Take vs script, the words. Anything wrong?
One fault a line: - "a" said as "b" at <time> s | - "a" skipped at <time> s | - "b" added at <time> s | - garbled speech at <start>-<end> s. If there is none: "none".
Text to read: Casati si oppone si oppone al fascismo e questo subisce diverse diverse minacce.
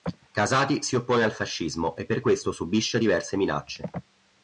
- "si oppone" skipped at 1.2 s
- "per" added at 2.0 s
- "diverse" skipped at 3.4 s